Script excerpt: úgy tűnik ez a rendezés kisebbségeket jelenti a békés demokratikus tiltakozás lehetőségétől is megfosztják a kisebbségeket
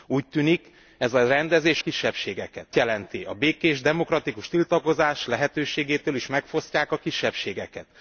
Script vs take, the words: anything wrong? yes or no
no